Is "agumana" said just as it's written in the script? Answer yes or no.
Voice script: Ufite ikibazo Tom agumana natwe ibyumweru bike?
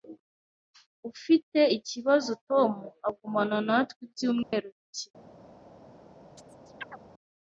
yes